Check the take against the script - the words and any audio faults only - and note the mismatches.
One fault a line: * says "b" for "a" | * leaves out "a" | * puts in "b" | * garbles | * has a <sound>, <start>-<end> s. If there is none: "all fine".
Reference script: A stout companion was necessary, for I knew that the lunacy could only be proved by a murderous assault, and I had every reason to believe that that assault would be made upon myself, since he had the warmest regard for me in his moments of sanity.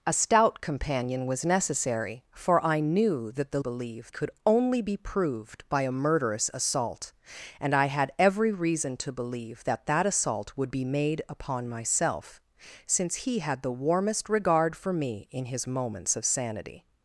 * says "believe" for "lunacy"